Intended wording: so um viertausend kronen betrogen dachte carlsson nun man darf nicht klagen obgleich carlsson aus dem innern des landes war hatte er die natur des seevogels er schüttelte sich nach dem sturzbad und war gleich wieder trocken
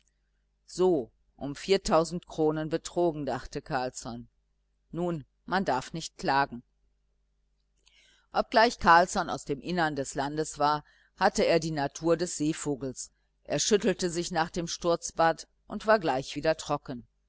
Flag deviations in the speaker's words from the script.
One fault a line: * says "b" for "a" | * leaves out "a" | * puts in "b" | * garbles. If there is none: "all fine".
all fine